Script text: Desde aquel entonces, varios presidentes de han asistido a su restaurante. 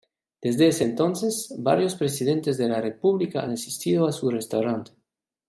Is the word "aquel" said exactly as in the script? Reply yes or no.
no